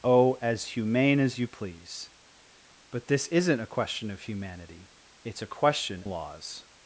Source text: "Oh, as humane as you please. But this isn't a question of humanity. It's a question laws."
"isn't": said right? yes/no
yes